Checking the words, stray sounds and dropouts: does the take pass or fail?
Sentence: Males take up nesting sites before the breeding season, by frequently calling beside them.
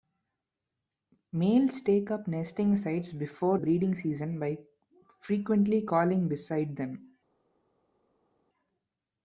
fail